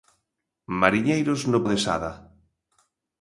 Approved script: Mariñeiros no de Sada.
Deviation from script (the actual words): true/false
false